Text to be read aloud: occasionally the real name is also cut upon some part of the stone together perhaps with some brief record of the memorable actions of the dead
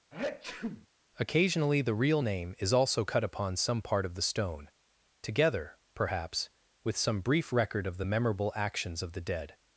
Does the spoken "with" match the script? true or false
true